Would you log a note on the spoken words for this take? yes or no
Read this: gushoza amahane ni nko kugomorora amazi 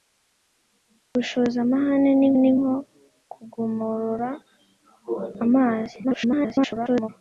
yes